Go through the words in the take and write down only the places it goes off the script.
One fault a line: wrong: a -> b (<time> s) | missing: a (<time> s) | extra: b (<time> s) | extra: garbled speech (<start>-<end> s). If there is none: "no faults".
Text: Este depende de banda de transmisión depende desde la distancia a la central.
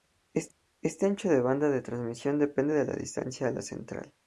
wrong: depende -> ancho (1.1 s)
wrong: desde -> de (2.7 s)